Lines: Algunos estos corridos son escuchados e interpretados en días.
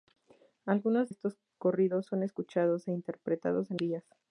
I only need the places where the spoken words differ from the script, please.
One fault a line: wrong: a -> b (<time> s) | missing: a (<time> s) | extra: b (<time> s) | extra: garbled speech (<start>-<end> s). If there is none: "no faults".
no faults